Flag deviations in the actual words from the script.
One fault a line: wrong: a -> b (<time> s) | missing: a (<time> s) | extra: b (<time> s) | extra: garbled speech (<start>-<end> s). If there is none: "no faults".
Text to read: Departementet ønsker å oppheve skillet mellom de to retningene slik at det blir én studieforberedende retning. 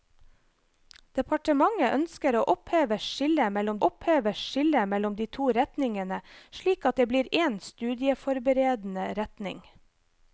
extra: oppheve skillet mellom (3.9 s)